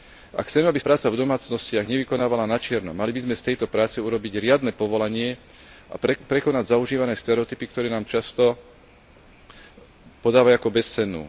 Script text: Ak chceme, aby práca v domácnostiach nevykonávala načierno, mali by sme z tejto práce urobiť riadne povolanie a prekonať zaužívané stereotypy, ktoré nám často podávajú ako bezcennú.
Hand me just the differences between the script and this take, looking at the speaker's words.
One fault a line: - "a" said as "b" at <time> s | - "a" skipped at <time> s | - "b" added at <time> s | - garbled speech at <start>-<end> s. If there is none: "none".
none